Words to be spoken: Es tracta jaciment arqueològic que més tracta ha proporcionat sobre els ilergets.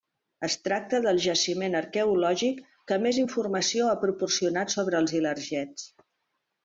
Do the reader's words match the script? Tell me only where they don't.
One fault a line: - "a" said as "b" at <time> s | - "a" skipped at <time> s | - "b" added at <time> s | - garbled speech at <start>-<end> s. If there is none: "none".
- "del" added at 1.1 s
- "tracta" said as "informació" at 3.2 s